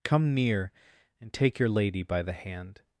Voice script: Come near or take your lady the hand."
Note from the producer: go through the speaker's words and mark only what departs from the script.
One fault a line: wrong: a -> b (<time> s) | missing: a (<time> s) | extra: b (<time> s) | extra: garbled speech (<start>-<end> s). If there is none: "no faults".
wrong: or -> and (1.2 s)
extra: by (2.0 s)